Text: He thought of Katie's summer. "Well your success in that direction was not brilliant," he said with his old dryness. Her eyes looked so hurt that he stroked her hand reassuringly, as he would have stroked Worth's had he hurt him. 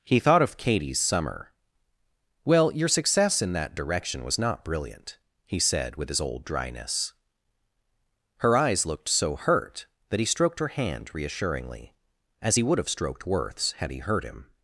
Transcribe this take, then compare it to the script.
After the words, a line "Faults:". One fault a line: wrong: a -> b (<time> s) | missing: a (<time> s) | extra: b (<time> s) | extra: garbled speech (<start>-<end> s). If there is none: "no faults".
He thought of Katie's summer. "Well your success in that direction was not brilliant," he said with his old dryness. Her eyes looked so hurt that he stroked her hand reassuringly, as he would have stroked Worth's had he hurt him.
Faults:
no faults